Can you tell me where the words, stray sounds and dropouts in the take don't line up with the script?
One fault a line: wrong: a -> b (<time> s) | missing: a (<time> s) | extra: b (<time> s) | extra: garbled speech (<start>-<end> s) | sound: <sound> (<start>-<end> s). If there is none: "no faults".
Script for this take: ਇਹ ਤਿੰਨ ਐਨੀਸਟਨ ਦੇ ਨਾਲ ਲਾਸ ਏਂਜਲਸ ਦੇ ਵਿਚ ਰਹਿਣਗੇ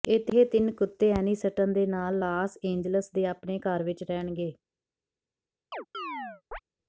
extra: ਕੁੱਤੇ (0.7 s)
extra: ਆਪਣੇ ਘਰ (3.3 s)
sound: chirp (5.7-6.6 s)